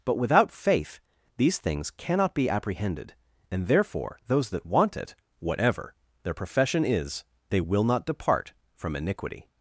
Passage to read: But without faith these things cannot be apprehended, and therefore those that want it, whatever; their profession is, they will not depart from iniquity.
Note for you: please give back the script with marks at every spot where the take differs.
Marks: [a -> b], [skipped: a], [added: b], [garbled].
But without faith these things cannot be apprehended, and therefore those that want it, whatever; their profession is, they will not depart from iniquity.